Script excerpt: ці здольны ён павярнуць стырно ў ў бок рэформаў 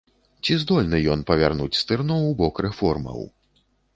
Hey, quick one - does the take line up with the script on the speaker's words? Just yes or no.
no